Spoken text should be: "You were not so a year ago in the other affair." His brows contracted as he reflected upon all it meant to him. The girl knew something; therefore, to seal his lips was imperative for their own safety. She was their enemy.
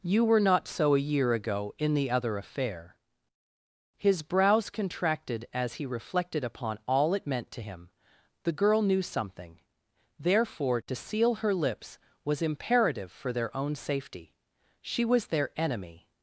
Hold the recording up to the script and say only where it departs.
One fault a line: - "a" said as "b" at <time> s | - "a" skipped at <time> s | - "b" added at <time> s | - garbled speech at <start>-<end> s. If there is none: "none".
- "his" said as "her" at 11.4 s